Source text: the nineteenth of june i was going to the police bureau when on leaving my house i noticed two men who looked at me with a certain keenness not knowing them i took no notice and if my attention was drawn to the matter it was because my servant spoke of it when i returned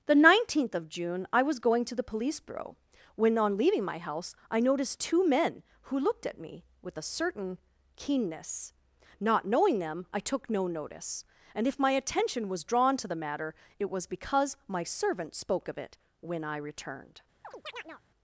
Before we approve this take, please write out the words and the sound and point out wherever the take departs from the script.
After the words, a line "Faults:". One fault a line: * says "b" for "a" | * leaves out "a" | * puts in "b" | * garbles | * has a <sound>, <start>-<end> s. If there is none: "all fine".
the nineteenth of june i was going to the police bureau when on leaving my house i noticed two men who looked at me with a certain keenness not knowing them i took no notice and if my attention was drawn to the matter it was because my servant spoke of it when i returned
Faults:
* has a chirp, 17.4-18.0 s